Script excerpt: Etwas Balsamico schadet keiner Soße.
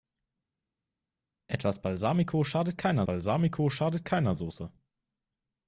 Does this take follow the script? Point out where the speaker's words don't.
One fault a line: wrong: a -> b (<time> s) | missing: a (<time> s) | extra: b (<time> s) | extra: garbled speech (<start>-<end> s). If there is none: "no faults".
extra: Balsamico schadet keiner (3.1 s)